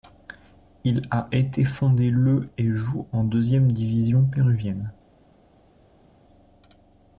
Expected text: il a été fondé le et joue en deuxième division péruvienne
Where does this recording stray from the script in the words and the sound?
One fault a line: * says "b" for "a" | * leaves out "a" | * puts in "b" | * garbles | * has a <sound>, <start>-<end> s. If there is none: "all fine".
all fine